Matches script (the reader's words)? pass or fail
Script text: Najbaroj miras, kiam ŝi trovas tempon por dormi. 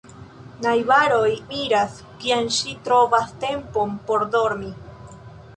pass